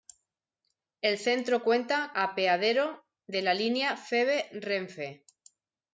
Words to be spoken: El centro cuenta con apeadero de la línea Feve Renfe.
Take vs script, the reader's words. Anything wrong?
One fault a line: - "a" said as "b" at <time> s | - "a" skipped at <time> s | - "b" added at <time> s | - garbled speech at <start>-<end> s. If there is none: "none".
- "con" skipped at 2.1 s